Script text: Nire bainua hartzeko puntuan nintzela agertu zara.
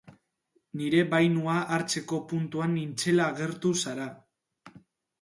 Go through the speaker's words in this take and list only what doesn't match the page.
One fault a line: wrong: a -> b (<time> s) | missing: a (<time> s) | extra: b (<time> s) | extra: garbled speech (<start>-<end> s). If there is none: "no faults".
no faults